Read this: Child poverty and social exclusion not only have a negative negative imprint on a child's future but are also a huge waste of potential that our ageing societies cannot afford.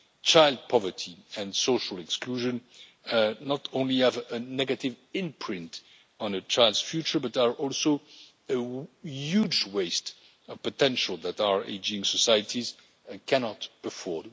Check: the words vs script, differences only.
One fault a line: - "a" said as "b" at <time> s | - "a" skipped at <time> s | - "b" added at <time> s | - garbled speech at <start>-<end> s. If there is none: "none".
- "negative" skipped at 4.9 s